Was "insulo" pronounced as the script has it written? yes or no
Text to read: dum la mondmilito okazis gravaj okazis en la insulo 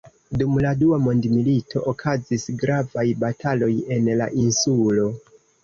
yes